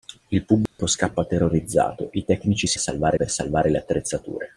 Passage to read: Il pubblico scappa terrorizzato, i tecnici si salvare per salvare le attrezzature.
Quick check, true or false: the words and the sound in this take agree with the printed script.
false